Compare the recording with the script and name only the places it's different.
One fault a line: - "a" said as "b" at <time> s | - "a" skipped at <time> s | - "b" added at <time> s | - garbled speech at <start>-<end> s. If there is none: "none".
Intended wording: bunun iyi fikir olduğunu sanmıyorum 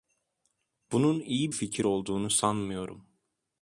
none